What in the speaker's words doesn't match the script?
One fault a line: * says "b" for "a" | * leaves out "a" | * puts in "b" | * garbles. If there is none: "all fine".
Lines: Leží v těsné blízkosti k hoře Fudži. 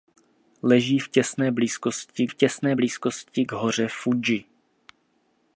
* puts in "v těsné blízkosti"